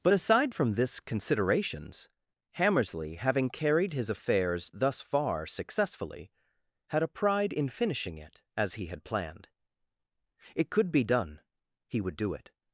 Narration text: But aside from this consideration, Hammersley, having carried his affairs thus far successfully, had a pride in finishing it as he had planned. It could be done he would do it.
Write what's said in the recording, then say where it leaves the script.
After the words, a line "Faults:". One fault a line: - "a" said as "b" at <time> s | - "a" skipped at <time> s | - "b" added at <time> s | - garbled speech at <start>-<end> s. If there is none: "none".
But aside from this considerations, Hammersley, having carried his affairs thus far successfully, had a pride in finishing it as he had planned. It could be done he would do it.
Faults:
- "consideration" said as "considerations" at 1.0 s